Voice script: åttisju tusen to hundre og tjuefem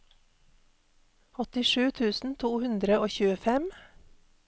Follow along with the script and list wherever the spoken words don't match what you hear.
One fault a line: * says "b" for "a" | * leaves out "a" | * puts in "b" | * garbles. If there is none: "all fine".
all fine